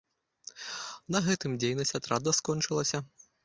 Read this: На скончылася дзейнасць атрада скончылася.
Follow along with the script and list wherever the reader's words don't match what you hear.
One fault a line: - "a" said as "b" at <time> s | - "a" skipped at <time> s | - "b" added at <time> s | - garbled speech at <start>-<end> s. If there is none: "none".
- "скончылася" said as "гэтым" at 1.3 s